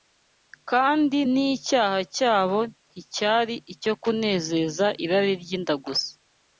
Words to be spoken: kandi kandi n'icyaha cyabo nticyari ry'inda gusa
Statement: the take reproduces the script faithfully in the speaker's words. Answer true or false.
false